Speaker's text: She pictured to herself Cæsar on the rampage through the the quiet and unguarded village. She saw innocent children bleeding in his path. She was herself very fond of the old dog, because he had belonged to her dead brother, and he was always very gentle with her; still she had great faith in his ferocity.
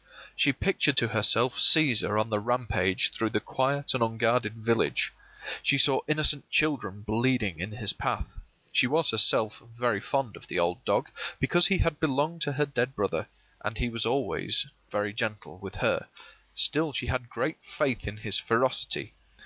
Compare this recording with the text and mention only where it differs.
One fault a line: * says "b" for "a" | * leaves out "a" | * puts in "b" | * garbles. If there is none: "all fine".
* leaves out "the"